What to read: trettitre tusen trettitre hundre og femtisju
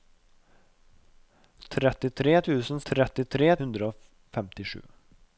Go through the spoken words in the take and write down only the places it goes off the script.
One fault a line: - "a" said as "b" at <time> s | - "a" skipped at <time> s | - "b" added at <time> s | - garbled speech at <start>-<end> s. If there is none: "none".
none